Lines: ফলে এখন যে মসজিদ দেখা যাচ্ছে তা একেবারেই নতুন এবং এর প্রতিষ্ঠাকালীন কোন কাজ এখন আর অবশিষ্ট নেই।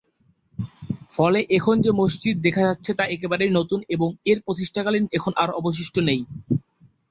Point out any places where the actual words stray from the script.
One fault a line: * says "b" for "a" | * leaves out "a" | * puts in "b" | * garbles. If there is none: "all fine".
* leaves out "কোন কাজ"